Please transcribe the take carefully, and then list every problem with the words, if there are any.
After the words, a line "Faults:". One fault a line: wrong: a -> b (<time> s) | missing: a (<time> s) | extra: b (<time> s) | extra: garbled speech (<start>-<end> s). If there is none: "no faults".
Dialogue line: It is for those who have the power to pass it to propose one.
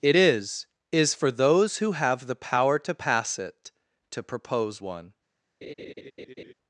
It is is for those who have the power to pass it to propose one.
Faults:
extra: is (0.9 s)